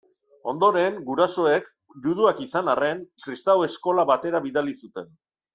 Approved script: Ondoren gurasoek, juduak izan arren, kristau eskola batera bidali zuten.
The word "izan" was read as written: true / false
true